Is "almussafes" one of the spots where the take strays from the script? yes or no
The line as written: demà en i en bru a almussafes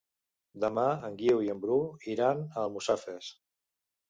no